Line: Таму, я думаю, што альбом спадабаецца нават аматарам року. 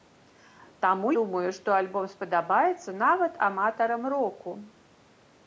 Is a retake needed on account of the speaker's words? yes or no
yes